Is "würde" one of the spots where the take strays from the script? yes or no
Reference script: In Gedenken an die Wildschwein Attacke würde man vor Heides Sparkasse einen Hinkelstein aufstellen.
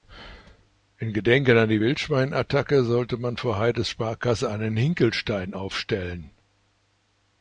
yes